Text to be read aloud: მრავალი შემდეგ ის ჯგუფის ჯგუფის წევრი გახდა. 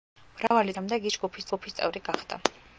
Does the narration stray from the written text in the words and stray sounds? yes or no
yes